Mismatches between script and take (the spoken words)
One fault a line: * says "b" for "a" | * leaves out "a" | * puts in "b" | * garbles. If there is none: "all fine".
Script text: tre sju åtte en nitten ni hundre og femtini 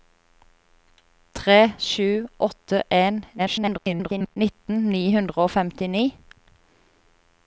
* garbles